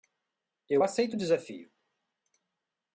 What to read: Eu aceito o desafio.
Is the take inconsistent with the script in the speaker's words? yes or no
no